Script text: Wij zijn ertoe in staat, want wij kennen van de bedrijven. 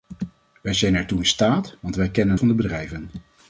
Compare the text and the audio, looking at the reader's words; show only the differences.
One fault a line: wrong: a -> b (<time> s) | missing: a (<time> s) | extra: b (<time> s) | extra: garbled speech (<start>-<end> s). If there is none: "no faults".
no faults